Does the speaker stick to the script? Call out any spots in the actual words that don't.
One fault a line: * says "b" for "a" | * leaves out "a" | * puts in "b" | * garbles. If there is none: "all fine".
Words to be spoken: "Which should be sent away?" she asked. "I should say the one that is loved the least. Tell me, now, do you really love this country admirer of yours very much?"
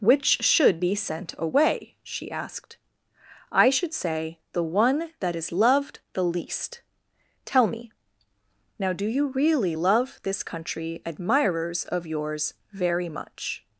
* says "admirers" for "admirer"